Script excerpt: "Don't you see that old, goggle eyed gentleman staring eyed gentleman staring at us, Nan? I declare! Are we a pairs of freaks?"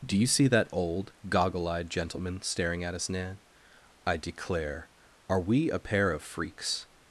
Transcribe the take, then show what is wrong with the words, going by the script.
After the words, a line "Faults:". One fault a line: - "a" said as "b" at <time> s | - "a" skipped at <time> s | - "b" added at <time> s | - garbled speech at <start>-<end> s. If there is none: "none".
"Do you see that old, goggle eyed gentleman staring at us, Nan? I declare! Are we a pair of freaks?"
Faults:
- "Don't" said as "Do" at 0.0 s
- "eyed gentleman staring" skipped at 2.8 s
- "pairs" said as "pair" at 5.8 s